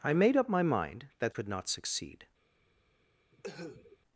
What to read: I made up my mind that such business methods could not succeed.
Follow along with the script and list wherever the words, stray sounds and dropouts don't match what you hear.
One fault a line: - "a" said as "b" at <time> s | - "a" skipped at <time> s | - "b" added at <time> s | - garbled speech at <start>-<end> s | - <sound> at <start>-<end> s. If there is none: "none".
- "such business methods" skipped at 1.4 s
- cough at 3.3-4.0 s